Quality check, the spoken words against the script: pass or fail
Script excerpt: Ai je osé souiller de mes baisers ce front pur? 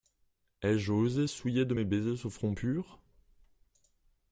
pass